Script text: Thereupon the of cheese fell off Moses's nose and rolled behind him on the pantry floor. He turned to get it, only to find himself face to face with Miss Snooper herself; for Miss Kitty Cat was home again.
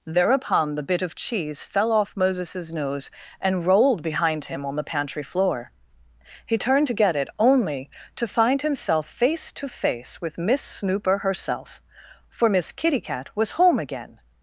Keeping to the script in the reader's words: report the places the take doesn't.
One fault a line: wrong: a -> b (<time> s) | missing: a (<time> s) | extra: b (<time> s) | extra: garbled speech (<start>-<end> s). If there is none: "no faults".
extra: bit (0.8 s)